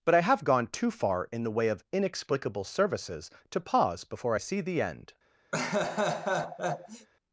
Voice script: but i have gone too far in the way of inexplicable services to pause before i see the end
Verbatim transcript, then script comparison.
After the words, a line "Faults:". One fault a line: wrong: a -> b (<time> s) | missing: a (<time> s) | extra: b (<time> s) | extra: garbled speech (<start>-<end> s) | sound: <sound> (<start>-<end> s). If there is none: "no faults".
but i have gone too far in the way of inexplicable services to pause before i see the end
Faults:
sound: laugh (5.5-7.1 s)